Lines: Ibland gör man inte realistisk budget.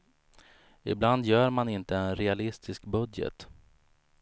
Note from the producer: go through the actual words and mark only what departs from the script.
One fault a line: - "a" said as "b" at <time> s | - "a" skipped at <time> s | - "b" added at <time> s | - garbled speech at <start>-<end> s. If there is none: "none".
- "en" added at 1.9 s